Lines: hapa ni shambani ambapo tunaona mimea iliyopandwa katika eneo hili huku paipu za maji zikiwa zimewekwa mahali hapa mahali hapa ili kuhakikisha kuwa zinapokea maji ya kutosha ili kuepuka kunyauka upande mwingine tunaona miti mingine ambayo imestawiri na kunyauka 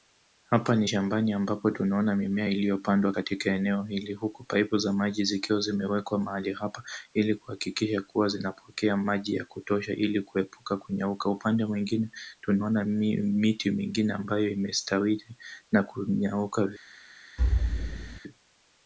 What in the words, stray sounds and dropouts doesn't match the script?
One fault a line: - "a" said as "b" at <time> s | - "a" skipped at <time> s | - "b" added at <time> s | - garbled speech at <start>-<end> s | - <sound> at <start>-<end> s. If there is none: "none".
- "mahali hapa" skipped at 6.8 s
- thud at 17.4-18.2 s